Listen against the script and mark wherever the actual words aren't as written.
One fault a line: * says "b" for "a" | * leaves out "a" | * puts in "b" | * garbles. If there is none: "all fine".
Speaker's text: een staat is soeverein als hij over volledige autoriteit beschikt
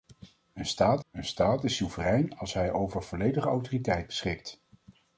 * puts in "een staat"